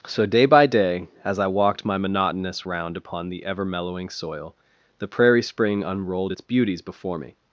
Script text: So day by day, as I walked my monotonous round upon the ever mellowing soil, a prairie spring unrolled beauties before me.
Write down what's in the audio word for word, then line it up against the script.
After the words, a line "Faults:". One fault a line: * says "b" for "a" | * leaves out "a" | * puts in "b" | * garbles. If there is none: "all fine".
So day by day, as I walked my monotonous round upon the ever mellowing soil, the prairie spring unrolled its beauties before me.
Faults:
* says "the" for "a"
* puts in "its"